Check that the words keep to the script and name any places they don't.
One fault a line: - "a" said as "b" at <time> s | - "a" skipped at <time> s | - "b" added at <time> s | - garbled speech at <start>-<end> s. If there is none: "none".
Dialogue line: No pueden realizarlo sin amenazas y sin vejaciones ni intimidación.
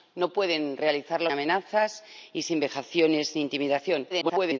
- "sin" skipped at 1.3 s
- garbled speech at 4.1-4.6 s